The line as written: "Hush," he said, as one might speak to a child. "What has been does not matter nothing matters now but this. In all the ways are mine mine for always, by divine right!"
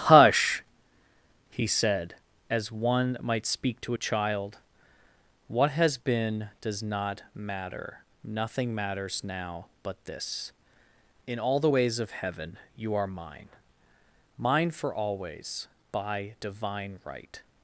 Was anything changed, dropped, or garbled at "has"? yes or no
no